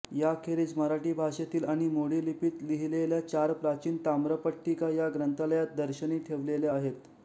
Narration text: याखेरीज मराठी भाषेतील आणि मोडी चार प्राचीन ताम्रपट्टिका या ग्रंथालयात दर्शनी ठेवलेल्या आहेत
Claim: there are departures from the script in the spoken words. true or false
true